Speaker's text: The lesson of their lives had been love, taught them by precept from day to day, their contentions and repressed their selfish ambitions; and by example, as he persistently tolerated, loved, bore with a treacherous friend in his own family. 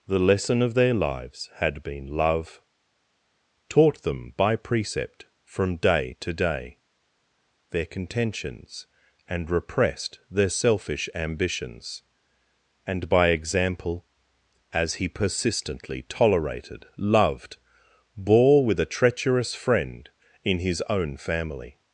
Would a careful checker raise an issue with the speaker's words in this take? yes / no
no